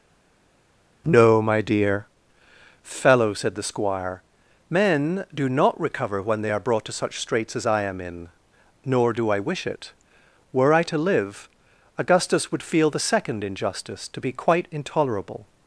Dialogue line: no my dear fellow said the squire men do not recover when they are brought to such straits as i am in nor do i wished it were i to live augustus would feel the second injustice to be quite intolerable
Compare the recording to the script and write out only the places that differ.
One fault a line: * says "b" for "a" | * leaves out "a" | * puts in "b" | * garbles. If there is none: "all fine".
* says "wish" for "wished"